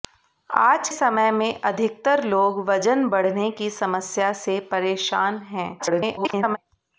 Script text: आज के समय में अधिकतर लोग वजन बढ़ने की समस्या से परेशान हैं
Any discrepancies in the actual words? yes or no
yes